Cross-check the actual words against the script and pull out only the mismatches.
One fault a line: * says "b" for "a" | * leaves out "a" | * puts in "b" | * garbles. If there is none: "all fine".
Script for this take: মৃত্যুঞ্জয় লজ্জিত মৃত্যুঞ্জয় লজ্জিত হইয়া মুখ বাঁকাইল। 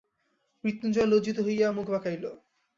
* leaves out "মৃত্যুঞ্জয় লজ্জিত"